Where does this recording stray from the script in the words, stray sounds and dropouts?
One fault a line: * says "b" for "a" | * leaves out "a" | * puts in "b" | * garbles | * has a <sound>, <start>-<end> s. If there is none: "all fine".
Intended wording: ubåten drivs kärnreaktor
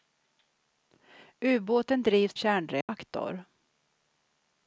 * has a dropout, 2.8-2.9 s